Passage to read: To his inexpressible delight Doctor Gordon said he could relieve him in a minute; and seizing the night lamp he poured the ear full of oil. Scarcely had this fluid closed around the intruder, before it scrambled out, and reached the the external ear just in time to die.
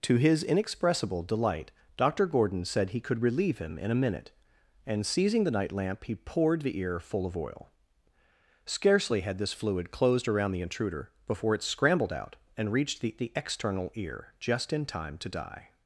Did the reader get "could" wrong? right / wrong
right